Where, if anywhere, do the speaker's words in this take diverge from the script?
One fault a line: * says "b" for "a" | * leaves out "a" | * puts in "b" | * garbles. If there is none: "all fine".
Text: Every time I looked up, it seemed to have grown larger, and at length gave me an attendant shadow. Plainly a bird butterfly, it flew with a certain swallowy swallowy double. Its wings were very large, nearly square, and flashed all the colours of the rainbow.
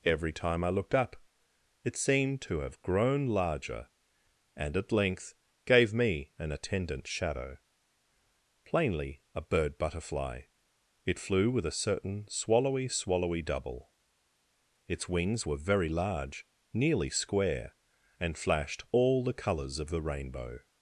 all fine